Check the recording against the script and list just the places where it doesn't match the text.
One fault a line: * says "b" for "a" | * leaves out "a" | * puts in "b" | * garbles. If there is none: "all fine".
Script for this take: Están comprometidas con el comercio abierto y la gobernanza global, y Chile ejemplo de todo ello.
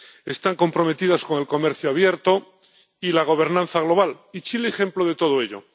all fine